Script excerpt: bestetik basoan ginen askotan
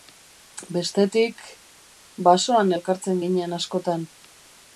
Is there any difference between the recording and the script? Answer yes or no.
yes